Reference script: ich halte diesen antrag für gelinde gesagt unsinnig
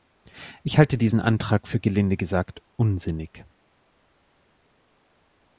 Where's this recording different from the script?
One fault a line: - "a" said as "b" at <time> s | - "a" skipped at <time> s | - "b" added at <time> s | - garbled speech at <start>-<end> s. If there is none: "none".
none